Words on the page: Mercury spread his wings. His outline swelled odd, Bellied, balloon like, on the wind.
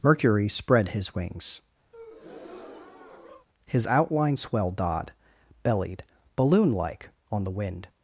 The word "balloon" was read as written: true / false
true